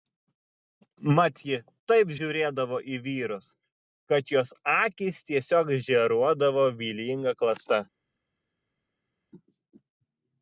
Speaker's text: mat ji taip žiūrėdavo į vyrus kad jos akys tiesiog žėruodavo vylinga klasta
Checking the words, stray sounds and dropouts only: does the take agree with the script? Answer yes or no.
yes